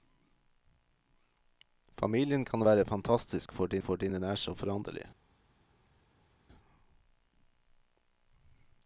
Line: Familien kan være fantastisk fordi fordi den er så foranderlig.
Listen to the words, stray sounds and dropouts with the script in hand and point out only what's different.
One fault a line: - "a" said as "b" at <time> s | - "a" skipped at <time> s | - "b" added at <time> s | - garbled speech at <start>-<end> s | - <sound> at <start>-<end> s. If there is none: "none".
none